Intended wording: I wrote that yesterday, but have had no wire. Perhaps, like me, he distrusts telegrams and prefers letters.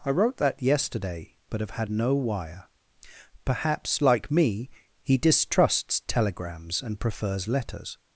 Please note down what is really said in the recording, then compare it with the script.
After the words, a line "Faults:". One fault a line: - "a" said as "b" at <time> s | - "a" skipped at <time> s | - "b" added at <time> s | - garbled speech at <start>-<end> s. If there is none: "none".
I wrote that yesterday, but have had no wire. Perhaps, like me, he distrusts telegrams and prefers letters.
Faults:
none